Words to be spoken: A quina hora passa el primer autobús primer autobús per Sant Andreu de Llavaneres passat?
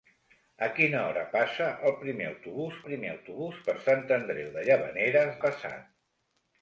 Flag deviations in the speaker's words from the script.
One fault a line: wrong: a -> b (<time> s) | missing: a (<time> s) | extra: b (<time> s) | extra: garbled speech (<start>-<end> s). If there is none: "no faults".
no faults